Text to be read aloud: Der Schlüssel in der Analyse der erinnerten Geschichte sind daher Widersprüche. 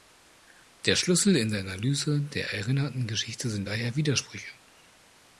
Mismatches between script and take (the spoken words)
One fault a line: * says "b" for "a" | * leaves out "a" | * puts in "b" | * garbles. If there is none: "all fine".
all fine